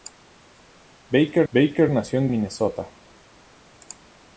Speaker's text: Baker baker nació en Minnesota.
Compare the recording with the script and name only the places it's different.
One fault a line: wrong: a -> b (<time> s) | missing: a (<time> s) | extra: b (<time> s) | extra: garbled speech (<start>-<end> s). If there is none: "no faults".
no faults